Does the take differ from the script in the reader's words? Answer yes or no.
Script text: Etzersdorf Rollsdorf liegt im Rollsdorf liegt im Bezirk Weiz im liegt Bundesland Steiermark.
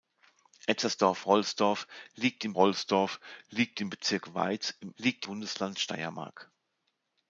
no